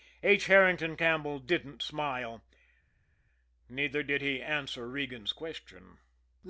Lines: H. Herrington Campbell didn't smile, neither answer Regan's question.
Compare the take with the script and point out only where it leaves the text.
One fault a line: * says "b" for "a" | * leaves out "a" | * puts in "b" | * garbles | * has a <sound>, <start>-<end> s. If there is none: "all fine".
* puts in "did he"